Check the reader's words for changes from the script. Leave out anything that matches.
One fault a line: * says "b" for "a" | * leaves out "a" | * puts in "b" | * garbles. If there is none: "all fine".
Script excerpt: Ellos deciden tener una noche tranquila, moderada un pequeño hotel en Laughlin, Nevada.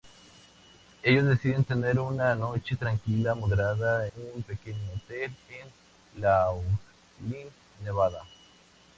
all fine